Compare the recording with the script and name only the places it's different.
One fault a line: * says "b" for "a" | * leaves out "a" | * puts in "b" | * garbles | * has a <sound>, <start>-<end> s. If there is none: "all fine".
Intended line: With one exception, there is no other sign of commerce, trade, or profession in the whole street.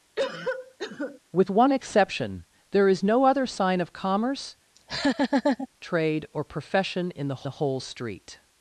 * has a cough, 0.2-1.2 s
* has a laugh, 4.8-5.7 s
* puts in "the"